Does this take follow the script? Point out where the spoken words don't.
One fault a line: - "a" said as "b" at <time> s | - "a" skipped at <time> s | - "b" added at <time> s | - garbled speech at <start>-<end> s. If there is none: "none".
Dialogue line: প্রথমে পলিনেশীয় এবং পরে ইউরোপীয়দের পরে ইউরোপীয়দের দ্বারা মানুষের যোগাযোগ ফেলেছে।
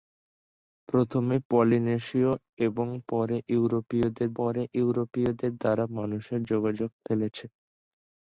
none